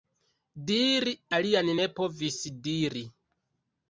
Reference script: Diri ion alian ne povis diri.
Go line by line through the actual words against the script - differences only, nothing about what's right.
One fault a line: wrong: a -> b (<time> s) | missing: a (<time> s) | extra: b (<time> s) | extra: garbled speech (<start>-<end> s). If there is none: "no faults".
missing: ion (1.1 s)